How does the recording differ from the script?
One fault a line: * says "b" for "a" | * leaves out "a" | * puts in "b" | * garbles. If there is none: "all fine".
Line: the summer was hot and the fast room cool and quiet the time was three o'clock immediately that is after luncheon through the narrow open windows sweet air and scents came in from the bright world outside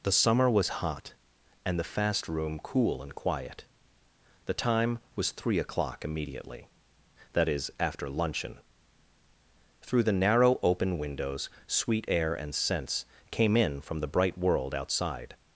all fine